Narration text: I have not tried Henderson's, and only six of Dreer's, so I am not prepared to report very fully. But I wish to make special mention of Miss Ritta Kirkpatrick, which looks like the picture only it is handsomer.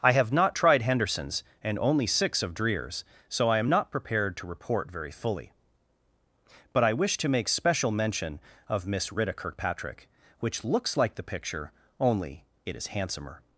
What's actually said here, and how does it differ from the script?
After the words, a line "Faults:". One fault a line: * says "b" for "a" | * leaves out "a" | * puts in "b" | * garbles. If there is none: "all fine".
I have not tried Henderson's, and only six of Dreer's, so I am not prepared to report very fully. But I wish to make special mention of Miss Ritta Kirkpatrick, which looks like the picture only it is handsomer.
Faults:
all fine